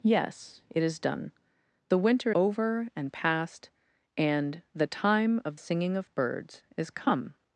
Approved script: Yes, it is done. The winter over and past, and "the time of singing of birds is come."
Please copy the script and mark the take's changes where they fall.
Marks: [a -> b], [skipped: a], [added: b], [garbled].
Yes, it is done. The winter over and past, and "the time of singing of birds is come."